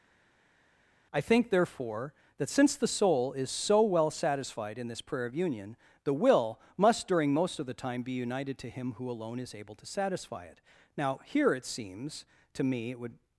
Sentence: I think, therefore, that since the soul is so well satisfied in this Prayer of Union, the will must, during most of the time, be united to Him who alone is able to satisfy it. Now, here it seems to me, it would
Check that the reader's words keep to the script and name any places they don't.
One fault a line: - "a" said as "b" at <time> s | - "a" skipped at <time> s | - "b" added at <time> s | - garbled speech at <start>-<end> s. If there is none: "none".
none